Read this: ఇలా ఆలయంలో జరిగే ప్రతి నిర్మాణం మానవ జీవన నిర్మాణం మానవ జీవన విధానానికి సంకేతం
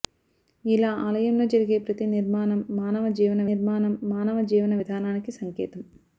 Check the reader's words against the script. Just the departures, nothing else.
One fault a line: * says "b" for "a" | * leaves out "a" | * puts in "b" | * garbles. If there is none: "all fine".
all fine